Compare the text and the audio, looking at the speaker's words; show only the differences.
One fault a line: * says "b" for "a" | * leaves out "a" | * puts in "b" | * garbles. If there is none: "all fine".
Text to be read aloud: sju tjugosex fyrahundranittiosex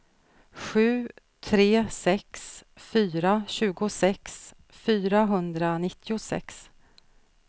* puts in "tre sex fyra"